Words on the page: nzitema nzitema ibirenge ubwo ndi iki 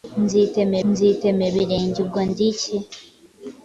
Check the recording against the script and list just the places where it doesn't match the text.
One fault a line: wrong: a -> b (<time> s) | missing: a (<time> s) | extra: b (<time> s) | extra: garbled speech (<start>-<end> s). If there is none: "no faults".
no faults